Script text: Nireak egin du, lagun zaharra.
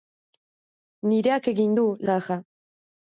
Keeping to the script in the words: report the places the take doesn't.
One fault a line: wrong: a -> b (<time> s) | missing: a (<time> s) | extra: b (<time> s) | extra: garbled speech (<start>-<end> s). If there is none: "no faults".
missing: lagun (1.8 s)